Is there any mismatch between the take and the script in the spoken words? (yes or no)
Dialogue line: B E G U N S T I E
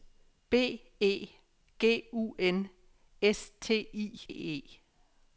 no